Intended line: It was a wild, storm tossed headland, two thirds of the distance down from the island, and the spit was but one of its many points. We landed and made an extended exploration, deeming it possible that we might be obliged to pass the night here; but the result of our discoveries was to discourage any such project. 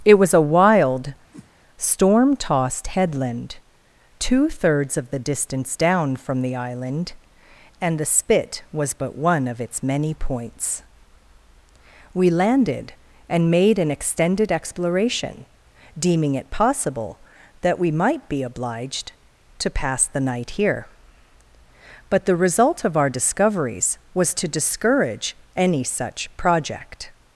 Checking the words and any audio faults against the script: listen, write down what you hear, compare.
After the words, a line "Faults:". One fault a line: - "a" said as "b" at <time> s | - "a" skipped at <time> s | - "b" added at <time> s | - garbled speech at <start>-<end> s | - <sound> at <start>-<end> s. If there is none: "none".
It was a wild, storm tossed headland, two thirds of the distance down from the island, and the spit was but one of its many points. We landed and made an extended exploration, deeming it possible that we might be obliged to pass the night here; but the result of our discoveries was to discourage any such project.
Faults:
- whoosh at 1.3-1.5 s